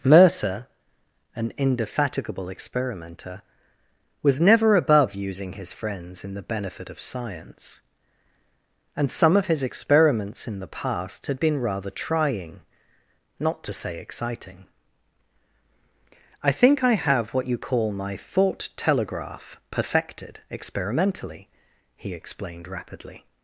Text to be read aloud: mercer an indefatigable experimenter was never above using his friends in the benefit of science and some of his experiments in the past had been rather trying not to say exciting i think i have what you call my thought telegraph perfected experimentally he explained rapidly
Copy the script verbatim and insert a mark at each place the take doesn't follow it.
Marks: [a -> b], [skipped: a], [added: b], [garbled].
mercer an indefatigable experimenter was never above using his friends in the benefit of science and some of his experiments in the past had been rather trying not to say exciting i think i have what you call my thought telegraph perfected experimentally he explained rapidly